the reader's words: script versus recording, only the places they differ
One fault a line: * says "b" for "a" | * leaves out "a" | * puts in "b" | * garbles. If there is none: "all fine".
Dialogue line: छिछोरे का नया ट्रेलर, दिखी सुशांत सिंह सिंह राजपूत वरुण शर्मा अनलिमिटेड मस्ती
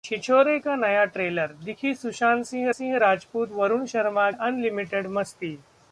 all fine